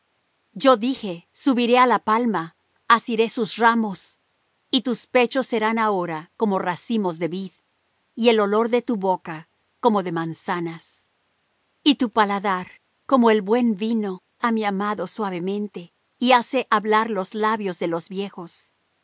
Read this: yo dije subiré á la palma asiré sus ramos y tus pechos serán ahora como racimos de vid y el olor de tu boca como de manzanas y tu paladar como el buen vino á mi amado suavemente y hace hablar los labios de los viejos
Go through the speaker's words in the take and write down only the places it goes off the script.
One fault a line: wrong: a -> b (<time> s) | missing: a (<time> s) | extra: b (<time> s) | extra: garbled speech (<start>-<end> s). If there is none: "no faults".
no faults